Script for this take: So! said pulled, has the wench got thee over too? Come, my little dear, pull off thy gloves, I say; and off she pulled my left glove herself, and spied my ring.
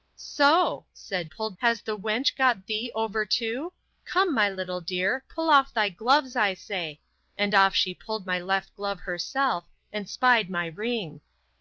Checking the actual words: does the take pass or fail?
pass